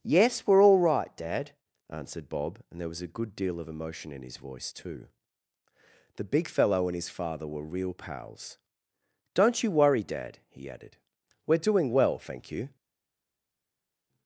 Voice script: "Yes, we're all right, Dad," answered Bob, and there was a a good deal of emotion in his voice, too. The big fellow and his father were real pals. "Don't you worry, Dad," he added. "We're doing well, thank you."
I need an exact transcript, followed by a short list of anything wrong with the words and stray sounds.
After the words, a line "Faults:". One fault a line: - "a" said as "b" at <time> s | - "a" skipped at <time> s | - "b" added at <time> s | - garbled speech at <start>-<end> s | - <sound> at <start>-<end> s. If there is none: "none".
"Yes, we're all right, Dad," answered Bob, and there was a good deal of emotion in his voice, too. The big fellow and his father were real pals. "Don't you worry, Dad," he added. "We're doing well, thank you."
Faults:
- "a" skipped at 3.2 s